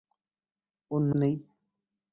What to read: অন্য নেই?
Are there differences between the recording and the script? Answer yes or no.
no